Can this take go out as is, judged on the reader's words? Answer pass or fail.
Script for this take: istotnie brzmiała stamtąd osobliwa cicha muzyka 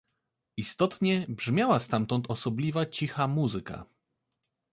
pass